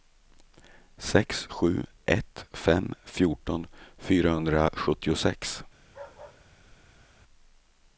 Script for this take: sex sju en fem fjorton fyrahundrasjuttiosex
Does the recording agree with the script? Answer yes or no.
no